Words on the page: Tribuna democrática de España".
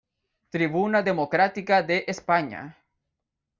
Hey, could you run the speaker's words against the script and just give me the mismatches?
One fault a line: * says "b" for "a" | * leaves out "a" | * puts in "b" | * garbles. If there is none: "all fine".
all fine